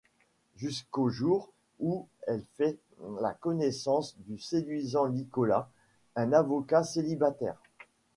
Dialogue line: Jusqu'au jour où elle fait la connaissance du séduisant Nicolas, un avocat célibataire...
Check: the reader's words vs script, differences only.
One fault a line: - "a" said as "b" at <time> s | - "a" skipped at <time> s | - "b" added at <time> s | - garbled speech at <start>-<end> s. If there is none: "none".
none